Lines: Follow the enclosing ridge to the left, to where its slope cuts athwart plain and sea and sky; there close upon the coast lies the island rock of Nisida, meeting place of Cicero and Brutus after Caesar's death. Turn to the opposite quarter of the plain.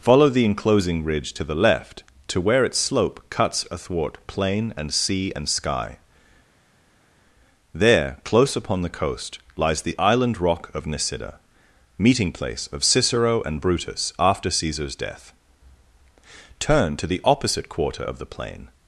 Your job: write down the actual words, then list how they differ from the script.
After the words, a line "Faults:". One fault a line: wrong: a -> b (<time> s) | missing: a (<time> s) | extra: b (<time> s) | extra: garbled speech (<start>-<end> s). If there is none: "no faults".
Follow the enclosing ridge to the left, to where its slope cuts athwart plain and sea and sky; there close upon the coast lies the island rock of Nisida, meeting place of Cicero and Brutus after Caesar's death. Turn to the opposite quarter of the plain.
Faults:
no faults